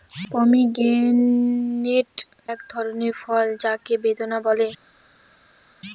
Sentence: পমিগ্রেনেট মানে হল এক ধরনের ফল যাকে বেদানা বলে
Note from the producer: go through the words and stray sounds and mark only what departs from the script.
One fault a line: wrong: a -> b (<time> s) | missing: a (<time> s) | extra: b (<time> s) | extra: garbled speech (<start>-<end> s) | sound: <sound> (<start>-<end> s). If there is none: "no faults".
missing: মানে হল (2.1 s)